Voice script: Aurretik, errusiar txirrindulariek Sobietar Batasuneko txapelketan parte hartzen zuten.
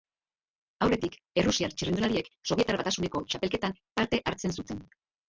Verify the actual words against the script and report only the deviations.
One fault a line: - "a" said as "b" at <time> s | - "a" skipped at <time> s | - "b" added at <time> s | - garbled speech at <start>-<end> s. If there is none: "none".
none